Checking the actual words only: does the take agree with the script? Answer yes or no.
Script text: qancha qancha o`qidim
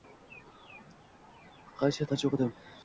yes